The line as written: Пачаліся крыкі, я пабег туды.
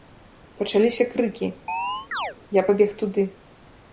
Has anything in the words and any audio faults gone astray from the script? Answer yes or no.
yes